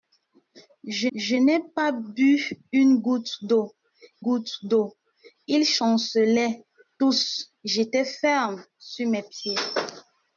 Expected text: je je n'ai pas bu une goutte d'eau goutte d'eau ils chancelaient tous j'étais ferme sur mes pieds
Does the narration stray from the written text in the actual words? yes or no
no